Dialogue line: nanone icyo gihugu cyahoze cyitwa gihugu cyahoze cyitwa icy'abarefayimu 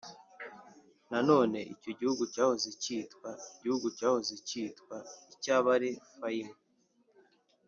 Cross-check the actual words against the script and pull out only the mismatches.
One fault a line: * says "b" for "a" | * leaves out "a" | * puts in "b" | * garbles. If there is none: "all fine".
all fine